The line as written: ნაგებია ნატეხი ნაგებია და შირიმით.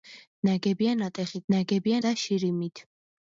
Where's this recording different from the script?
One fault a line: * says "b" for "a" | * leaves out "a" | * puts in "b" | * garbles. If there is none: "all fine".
all fine